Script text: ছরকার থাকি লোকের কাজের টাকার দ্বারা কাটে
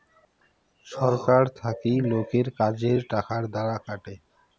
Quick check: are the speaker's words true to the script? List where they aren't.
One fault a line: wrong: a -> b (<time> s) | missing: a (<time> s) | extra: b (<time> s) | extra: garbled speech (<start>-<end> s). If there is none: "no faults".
no faults